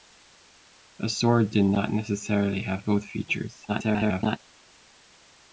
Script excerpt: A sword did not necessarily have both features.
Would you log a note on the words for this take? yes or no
yes